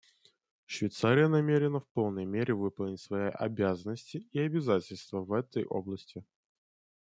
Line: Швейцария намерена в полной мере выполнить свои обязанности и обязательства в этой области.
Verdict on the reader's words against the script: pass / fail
pass